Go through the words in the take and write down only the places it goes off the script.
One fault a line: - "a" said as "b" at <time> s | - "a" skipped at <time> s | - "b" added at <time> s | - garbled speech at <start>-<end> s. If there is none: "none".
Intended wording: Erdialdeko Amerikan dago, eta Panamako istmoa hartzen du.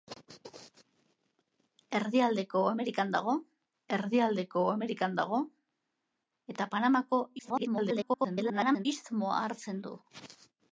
- "erdialdeko Amerikan dago" added at 4.0 s
- garbled speech at 7.4-8.9 s